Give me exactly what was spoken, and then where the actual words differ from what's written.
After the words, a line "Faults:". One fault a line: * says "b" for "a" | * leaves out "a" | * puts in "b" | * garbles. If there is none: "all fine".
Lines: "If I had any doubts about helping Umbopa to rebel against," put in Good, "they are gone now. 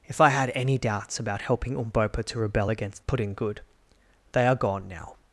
"If I had any doubts about helping Umbopa to rebel against," put in Good, "they are gone now.
Faults:
all fine